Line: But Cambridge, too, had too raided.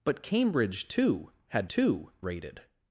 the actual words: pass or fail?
pass